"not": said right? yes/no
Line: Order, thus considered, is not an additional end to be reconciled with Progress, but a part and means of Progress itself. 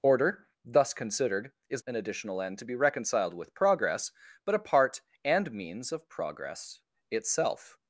no